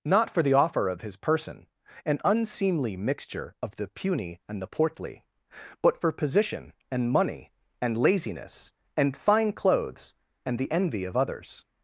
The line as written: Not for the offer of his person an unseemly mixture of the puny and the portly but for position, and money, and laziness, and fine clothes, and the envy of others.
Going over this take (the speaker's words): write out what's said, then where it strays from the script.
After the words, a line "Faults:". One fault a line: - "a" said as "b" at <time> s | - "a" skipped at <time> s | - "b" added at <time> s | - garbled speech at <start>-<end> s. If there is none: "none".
Not for the offer of his person an unseemly mixture of the puny and the portly but for position, and money, and laziness, and fine clothes, and the envy of others.
Faults:
none